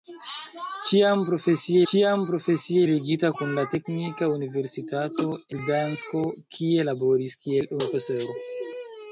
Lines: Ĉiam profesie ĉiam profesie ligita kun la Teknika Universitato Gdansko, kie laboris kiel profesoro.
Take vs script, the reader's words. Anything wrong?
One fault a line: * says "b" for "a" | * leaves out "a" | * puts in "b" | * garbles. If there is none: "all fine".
all fine